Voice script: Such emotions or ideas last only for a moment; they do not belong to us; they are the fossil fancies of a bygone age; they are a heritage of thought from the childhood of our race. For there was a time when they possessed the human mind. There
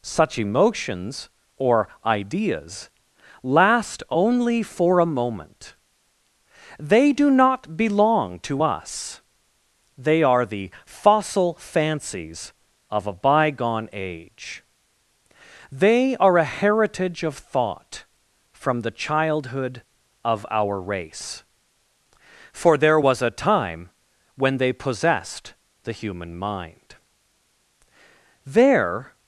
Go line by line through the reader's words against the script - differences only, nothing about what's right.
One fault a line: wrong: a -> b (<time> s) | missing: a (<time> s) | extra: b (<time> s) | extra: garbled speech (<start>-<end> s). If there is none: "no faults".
no faults